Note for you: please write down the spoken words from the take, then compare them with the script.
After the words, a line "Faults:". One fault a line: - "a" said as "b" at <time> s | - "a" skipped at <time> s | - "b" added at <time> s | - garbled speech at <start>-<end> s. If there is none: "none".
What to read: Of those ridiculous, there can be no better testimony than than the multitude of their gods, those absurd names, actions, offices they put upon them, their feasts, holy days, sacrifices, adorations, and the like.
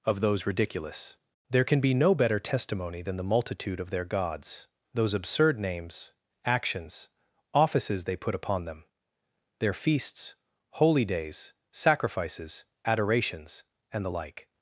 Of those ridiculous, there can be no better testimony than the multitude of their gods, those absurd names, actions, offices they put upon them, their feasts, holy days, sacrifices, adorations, and the like.
Faults:
- "than" skipped at 3.2 s